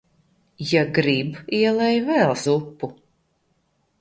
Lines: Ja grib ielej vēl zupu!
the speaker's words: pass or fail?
pass